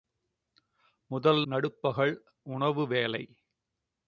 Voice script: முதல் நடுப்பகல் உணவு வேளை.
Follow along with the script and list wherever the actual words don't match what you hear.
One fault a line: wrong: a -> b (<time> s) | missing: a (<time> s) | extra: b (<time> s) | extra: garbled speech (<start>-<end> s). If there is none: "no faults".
no faults